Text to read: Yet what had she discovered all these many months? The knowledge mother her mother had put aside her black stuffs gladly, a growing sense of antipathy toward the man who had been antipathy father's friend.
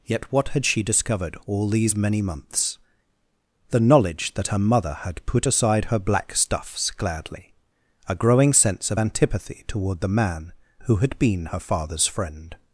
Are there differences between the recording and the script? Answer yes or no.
yes